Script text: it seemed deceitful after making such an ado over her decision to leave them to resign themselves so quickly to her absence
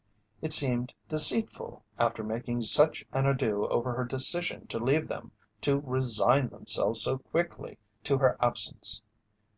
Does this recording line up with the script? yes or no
yes